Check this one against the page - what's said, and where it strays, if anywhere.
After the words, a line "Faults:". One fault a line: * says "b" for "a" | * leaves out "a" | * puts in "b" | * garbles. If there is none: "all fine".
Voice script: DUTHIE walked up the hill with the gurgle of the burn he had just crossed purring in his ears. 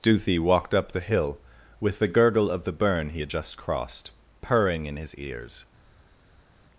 DUTHIE walked up the hill with the gurgle of the burn he had just crossed purring in his ears.
Faults:
all fine